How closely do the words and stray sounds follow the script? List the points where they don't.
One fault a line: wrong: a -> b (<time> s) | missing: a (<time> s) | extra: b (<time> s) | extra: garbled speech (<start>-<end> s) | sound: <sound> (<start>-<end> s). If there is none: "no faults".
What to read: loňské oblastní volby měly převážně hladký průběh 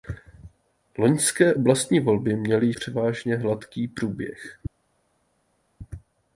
no faults